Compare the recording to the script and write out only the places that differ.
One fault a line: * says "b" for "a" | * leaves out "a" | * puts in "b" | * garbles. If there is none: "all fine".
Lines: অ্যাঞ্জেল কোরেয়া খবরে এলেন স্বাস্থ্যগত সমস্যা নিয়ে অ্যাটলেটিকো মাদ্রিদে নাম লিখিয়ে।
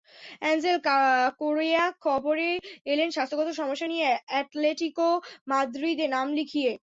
all fine